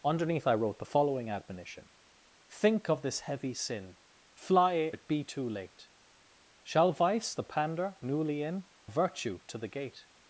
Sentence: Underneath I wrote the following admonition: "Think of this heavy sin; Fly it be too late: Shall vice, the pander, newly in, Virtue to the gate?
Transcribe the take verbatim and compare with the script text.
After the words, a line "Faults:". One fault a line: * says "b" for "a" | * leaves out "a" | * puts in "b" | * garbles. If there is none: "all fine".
Underneath I wrote the following admonition: "Think of this heavy sin; Fly it be too late: Shall vice, the pander, newly in, Virtue to the gate?
Faults:
all fine